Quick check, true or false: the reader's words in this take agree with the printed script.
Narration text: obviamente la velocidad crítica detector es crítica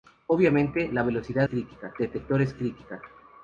true